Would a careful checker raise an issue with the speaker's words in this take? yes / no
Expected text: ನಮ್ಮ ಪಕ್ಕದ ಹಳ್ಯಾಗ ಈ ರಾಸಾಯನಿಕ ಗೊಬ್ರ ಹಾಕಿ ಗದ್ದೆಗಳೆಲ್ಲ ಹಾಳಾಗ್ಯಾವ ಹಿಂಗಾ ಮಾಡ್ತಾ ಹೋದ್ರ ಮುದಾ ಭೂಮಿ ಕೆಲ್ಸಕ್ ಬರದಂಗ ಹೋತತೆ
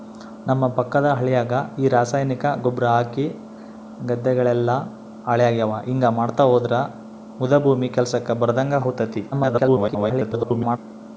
yes